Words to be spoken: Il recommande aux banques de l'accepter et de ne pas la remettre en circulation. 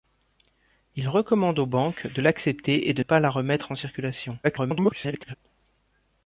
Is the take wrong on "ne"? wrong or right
wrong